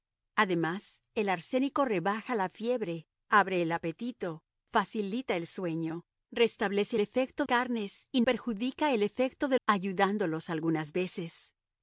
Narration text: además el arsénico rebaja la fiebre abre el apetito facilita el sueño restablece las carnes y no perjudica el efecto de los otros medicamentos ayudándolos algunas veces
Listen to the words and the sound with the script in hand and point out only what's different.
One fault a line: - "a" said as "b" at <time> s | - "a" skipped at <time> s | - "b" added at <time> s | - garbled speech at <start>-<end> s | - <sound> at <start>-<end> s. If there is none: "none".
- "las" said as "efecto" at 7.0 s
- "no" skipped at 8.2 s
- "los otros medicamentos" skipped at 9.6 s